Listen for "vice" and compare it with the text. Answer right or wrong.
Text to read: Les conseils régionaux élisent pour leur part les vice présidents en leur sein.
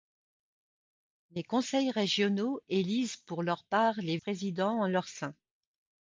wrong